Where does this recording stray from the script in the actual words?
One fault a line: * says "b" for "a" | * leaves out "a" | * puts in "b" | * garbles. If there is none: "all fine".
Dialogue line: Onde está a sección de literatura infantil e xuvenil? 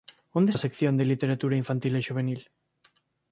* leaves out "está"